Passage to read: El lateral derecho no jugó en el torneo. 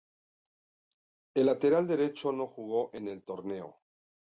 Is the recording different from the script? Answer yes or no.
no